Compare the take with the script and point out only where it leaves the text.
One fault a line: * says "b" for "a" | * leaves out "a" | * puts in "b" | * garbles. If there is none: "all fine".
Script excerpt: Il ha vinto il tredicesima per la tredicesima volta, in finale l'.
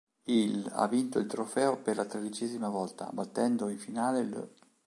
* says "trofeo" for "tredicesima"
* puts in "battendo"